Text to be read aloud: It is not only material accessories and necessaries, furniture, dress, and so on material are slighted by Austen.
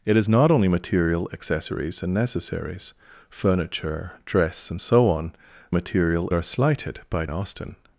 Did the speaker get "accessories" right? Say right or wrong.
right